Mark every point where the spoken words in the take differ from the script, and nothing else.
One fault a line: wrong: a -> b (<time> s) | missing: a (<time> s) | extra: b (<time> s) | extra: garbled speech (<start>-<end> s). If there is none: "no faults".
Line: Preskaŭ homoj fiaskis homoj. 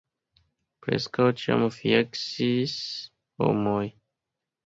wrong: homoj -> ĉiam (1.4 s)